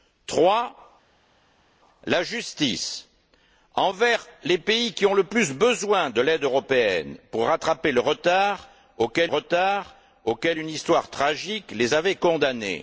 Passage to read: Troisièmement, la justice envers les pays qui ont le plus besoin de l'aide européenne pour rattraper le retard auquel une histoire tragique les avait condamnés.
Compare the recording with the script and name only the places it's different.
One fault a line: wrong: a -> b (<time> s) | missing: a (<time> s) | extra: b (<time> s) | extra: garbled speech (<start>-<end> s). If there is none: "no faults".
extra: retard auquel (9.3 s)